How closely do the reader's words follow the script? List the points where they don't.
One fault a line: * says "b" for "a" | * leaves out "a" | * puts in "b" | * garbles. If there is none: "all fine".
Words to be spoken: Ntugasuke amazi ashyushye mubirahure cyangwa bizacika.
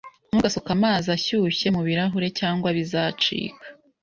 all fine